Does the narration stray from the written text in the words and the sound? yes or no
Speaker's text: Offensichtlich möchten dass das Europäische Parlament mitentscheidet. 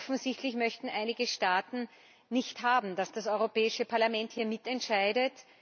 yes